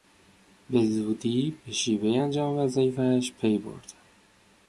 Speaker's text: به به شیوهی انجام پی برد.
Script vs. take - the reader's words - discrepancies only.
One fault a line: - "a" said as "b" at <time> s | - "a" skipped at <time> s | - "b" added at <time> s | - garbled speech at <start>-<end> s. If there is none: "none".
- "زودی" added at 0.8 s
- "وظایفش" added at 2.6 s